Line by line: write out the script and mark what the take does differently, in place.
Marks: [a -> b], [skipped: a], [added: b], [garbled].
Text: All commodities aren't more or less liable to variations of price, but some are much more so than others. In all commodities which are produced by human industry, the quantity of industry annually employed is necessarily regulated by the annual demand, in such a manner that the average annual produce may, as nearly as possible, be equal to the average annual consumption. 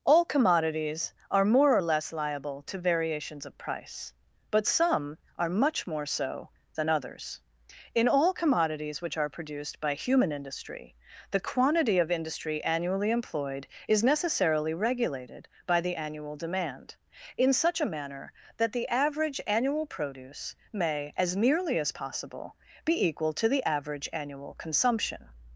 All commodities [aren't -> are] more or less liable to variations of price, but some are much more so than others. In all commodities which are produced by human industry, the quantity of industry annually employed is necessarily regulated by the annual demand, in such a manner that the average annual produce may, as nearly as possible, be equal to the average annual consumption.